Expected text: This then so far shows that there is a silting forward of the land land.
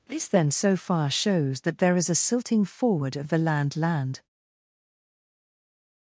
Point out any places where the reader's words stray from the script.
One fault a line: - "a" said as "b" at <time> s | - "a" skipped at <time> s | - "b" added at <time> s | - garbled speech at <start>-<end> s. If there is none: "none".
none